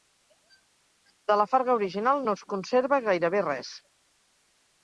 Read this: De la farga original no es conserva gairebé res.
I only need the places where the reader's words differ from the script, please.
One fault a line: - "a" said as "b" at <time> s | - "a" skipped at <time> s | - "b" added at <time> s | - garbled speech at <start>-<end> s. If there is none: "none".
none